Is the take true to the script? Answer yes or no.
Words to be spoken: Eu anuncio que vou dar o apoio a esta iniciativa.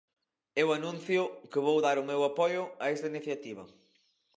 no